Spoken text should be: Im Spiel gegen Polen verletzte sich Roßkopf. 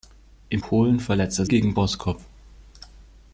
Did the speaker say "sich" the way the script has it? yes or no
no